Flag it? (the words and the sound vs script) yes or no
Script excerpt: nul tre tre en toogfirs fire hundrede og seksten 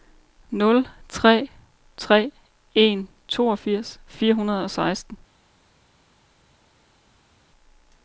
no